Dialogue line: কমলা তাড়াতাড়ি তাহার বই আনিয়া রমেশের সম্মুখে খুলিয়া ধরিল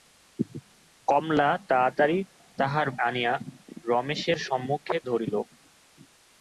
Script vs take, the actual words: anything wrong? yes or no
yes